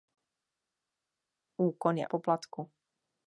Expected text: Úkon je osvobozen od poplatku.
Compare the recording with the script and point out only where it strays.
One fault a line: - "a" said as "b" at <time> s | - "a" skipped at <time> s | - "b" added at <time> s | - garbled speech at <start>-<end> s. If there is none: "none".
- "osvobozen od" skipped at 2.1 s